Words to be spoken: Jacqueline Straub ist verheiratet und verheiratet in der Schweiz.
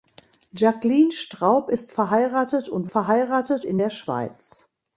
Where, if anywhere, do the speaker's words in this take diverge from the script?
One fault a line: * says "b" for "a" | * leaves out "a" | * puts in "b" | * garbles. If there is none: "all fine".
all fine